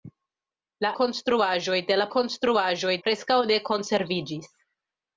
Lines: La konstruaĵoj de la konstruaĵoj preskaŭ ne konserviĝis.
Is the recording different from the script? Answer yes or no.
no